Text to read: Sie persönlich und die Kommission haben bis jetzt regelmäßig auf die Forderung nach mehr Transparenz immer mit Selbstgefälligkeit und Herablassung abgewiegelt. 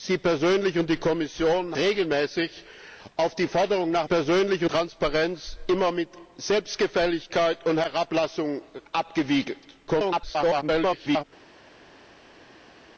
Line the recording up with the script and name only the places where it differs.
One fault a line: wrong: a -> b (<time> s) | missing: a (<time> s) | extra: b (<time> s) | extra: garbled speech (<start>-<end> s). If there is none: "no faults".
missing: haben bis jetzt (1.8 s)
wrong: mehr -> persönlich (4.0 s)
extra: garbled speech (9.9-11.2 s)